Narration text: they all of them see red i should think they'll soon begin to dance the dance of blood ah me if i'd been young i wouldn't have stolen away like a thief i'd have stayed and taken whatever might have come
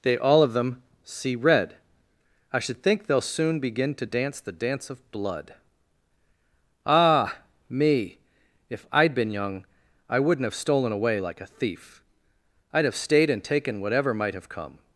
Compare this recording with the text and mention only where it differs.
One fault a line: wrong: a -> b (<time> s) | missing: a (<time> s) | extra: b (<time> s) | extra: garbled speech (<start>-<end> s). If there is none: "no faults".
no faults